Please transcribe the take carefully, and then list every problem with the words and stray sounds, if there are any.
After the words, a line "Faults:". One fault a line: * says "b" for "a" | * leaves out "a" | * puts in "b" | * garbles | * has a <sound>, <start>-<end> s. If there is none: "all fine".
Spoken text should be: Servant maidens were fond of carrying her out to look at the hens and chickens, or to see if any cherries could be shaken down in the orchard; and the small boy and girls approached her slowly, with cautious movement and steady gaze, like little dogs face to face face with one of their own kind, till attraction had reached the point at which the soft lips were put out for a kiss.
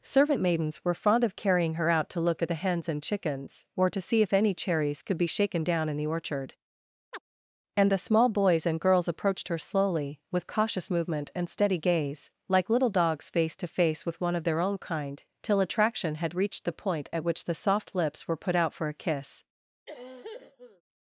Servant maidens were fond of carrying her out to look at the hens and chickens, or to see if any cherries could be shaken down in the orchard; and the small boys and girls approached her slowly, with cautious movement and steady gaze, like little dogs face to face with one of their own kind, till attraction had reached the point at which the soft lips were put out for a kiss.
Faults:
* has a chirp, 7.1-7.2 s
* says "boys" for "boy"
* leaves out "face"
* has a cough, 19.9-20.8 s